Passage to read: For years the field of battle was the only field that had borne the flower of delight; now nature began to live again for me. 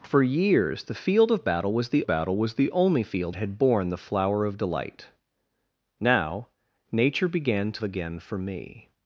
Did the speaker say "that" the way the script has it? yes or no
no